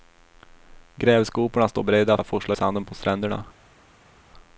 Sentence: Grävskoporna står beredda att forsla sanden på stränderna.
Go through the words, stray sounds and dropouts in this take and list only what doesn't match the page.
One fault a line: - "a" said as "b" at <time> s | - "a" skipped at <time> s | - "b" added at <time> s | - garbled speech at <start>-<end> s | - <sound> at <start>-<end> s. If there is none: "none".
none